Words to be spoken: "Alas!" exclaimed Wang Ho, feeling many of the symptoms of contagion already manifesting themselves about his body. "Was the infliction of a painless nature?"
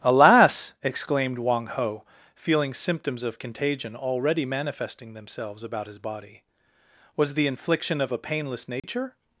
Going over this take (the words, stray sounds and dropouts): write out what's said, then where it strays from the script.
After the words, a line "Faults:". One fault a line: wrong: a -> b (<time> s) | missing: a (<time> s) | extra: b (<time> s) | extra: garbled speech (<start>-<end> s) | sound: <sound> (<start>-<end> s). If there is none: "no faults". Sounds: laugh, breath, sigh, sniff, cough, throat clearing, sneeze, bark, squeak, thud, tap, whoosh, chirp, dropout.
"Alas!" exclaimed Wang Ho, feeling symptoms of contagion already manifesting themselves about his body. "Was the infliction of a painless nature?"
Faults:
missing: many of the (2.7 s)
sound: dropout (8.8-8.8 s)